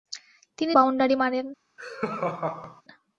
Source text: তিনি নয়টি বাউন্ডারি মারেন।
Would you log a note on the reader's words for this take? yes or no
yes